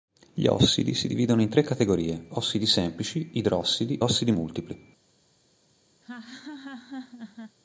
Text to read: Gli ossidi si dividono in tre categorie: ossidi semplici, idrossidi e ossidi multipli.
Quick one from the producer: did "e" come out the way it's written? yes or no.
no